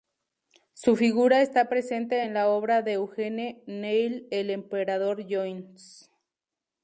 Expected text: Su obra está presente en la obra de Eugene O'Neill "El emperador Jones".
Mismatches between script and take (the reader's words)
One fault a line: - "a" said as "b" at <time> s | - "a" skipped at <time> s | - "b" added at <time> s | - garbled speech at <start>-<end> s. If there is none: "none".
- "obra" said as "figura" at 0.9 s